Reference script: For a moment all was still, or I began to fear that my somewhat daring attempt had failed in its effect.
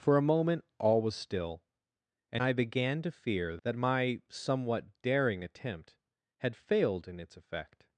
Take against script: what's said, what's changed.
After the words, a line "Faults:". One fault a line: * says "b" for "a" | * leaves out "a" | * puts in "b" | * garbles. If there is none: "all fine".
For a moment all was still, and I began to fear that my somewhat daring attempt had failed in its effect.
Faults:
* says "and" for "or"